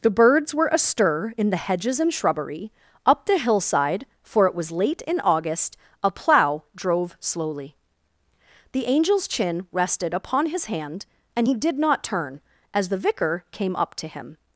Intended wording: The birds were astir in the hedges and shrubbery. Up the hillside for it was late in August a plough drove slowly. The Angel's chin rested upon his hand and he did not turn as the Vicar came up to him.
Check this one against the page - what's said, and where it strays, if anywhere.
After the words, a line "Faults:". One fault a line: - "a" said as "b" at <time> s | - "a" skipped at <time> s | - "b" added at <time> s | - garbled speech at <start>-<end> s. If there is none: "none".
The birds were astir in the hedges and shrubbery. Up the hillside for it was late in August a plough drove slowly. The Angel's chin rested upon his hand and he did not turn as the Vicar came up to him.
Faults:
none